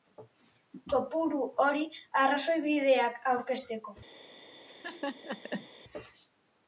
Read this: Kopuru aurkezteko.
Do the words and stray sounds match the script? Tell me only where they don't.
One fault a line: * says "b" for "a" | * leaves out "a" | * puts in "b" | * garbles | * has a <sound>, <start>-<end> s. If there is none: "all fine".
* puts in "hori arrazoibideak"
* has a laugh, 4.7-5.7 s